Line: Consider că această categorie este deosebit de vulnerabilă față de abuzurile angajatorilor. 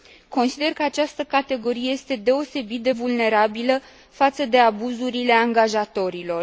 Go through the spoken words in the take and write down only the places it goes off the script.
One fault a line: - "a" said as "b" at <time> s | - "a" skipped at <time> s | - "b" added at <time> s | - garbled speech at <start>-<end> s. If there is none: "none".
none